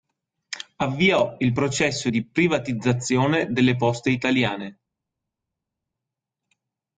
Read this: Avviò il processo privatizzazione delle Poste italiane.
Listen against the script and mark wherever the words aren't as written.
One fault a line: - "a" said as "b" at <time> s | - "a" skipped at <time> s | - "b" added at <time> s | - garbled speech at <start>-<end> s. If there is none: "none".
- "di" added at 2.1 s